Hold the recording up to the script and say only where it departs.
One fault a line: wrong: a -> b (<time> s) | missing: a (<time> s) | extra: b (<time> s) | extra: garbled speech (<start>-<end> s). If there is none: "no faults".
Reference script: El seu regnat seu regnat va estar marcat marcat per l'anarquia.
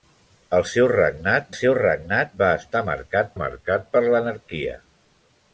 no faults